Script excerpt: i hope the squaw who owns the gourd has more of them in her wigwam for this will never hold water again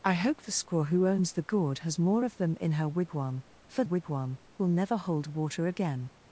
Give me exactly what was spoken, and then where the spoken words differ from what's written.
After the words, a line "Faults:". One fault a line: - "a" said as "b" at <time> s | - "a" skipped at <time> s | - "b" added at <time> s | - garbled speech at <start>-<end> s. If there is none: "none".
i hope the squaw who owns the gourd has more of them in her wigwam for wigwam will never hold water again
Faults:
- "this" said as "wigwam" at 3.8 s